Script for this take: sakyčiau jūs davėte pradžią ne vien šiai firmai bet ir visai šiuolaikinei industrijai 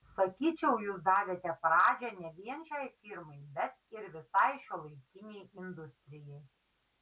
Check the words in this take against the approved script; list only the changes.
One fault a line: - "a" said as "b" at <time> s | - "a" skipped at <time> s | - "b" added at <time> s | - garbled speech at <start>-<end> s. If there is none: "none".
none